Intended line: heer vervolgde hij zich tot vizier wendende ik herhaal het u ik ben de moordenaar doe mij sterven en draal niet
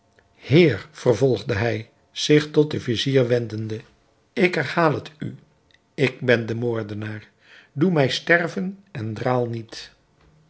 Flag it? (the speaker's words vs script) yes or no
yes